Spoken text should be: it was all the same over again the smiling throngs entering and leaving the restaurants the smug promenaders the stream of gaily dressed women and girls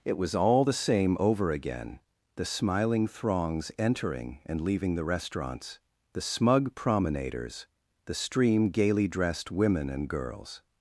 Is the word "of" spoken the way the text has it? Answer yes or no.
no